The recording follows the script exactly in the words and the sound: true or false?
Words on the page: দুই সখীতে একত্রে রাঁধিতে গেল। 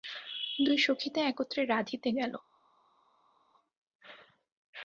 true